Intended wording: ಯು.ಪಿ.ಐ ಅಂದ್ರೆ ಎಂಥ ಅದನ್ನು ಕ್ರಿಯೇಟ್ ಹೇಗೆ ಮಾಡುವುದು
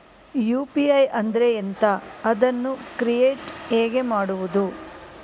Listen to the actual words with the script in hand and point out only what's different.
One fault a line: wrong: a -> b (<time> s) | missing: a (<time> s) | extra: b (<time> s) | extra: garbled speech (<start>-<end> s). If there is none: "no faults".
no faults